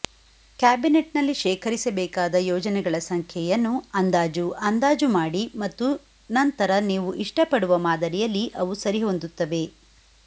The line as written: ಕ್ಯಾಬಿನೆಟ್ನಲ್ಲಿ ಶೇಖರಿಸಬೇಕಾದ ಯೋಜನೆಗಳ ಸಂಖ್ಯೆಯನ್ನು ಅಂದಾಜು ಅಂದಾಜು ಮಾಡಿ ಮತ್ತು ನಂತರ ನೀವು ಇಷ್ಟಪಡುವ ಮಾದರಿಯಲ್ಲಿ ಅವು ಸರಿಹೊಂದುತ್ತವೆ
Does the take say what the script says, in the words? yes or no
yes